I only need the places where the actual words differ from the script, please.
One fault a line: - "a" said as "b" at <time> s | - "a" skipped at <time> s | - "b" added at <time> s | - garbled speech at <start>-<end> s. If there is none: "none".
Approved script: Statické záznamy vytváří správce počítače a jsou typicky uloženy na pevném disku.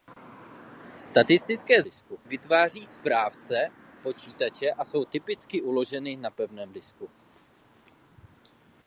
- "záznamy" said as "disku" at 1.8 s